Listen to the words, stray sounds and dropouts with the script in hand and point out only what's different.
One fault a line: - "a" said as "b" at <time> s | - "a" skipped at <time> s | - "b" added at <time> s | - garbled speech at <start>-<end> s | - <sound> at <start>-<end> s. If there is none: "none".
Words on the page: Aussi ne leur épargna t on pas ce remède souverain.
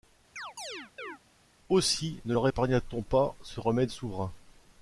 - chirp at 0.4-1.2 s